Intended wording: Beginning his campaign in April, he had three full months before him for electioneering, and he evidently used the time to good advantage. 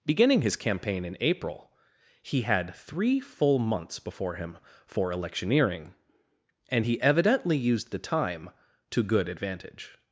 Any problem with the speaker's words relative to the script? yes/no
no